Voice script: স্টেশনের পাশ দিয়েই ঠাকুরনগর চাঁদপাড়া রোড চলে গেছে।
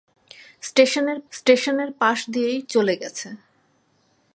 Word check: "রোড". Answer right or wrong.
wrong